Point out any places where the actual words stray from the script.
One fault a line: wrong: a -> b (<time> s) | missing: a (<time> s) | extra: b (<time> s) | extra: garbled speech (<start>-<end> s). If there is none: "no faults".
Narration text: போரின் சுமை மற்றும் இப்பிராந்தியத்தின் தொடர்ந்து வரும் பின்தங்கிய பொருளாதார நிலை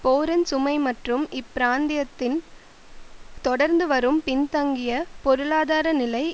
no faults